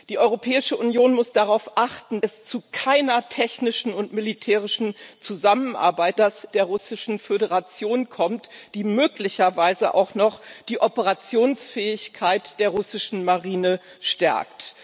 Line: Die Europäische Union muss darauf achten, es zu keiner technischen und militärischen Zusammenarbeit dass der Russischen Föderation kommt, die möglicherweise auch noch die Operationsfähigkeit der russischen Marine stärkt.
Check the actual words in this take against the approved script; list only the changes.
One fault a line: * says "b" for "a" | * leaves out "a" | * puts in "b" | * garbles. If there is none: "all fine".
all fine